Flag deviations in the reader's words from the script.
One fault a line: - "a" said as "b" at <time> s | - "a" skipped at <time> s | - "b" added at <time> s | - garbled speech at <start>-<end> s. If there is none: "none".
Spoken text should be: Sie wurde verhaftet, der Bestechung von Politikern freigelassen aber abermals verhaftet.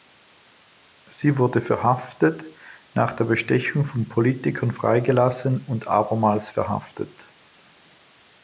- "nach" added at 3.0 s
- "aber" said as "und" at 5.6 s